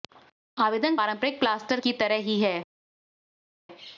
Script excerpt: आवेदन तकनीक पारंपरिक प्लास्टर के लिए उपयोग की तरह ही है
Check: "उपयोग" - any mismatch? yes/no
yes